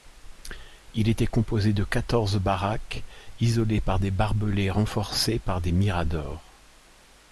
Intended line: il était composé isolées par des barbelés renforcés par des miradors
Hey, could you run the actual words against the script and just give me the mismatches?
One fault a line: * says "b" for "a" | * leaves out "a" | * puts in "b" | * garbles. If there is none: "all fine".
* puts in "de quatorze baraques"